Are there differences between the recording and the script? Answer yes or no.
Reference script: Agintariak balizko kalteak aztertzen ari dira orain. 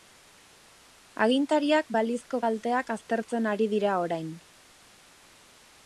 no